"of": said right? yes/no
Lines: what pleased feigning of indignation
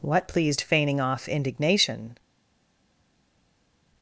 no